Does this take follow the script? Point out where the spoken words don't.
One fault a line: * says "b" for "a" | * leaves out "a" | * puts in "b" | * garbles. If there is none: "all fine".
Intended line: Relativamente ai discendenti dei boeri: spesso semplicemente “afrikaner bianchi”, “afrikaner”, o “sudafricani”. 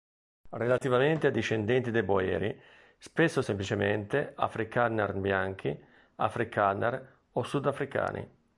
all fine